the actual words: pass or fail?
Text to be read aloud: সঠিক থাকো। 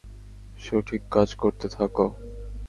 fail